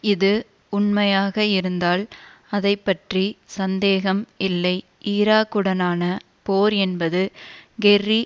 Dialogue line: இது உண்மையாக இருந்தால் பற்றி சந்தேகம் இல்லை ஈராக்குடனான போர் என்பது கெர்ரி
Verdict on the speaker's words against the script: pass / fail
fail